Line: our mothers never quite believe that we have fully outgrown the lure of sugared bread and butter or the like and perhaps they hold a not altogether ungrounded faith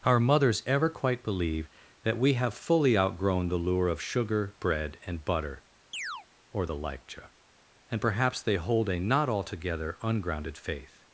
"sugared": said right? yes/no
no